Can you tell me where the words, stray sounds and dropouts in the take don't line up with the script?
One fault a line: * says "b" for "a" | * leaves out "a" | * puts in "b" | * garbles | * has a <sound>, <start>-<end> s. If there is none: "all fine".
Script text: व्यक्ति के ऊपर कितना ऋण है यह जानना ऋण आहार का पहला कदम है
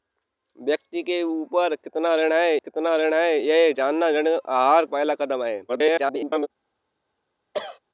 * puts in "कितना ऋण है"
* leaves out "का"
* garbles
* has a cough, 7.5-7.8 s